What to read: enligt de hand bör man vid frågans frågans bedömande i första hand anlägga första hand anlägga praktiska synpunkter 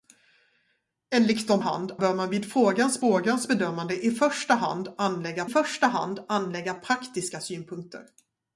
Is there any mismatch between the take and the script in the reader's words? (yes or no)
no